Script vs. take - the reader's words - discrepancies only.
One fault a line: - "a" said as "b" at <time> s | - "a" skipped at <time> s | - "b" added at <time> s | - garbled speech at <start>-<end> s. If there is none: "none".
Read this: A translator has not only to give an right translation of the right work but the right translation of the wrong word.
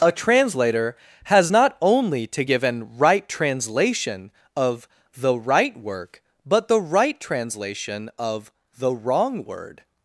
none